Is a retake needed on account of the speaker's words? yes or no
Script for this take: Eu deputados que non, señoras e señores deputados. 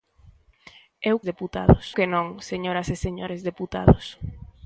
no